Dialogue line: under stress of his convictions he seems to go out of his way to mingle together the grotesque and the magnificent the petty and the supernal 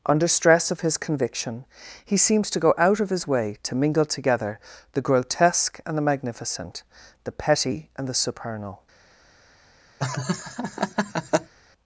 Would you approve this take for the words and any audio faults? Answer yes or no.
no